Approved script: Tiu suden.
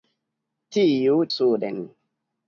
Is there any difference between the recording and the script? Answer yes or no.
no